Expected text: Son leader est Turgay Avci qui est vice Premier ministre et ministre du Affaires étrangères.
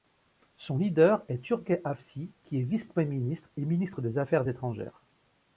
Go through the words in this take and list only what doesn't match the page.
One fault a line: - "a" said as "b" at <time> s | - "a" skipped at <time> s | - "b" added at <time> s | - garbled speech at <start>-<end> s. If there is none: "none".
- "du" said as "des" at 4.0 s